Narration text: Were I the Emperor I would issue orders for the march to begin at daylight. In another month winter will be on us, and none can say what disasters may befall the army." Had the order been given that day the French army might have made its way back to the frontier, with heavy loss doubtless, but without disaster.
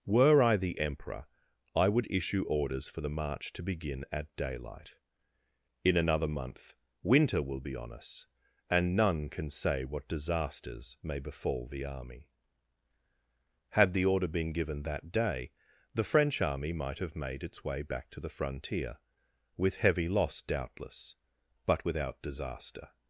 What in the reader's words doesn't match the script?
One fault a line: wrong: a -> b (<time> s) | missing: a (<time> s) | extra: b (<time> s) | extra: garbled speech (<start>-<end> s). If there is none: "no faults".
no faults